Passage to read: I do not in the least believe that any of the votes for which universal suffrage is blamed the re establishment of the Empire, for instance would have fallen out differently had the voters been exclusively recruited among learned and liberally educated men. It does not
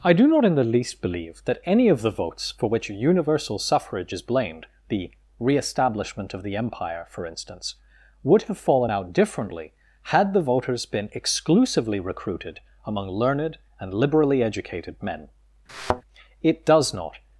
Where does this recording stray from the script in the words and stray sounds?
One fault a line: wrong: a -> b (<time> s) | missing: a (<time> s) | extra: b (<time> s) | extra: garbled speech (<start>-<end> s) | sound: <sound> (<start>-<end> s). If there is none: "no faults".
sound: thud (15.7-16.0 s)